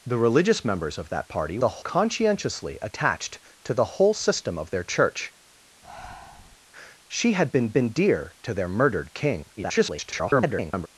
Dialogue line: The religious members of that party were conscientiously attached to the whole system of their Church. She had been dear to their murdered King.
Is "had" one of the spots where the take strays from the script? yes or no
no